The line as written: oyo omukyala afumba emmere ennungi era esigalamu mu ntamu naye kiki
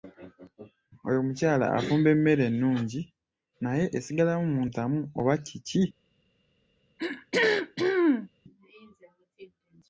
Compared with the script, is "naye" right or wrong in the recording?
wrong